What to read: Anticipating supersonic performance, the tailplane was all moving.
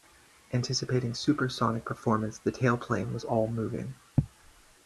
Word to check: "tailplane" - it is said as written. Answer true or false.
true